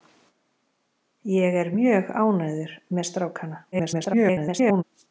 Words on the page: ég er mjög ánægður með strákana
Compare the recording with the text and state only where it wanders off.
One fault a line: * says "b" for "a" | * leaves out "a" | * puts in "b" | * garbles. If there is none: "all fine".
* garbles